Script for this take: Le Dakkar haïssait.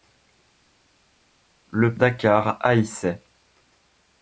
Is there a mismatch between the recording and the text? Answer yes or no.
no